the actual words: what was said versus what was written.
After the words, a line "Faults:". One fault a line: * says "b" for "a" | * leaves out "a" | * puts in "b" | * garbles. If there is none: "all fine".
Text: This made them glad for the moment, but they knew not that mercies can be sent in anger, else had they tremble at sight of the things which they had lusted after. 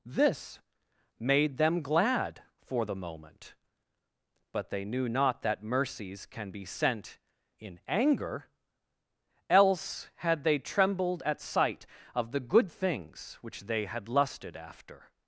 This made them glad for the moment, but they knew not that mercies can be sent in anger, else had they trembled at sight of the good things which they had lusted after.
Faults:
* says "trembled" for "tremble"
* puts in "good"